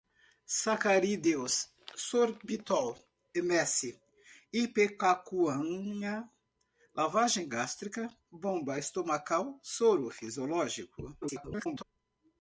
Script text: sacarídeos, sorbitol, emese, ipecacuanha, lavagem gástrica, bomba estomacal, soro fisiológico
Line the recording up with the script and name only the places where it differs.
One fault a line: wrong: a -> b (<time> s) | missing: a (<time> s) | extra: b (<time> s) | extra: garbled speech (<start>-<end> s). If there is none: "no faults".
extra: garbled speech (11.2-11.8 s)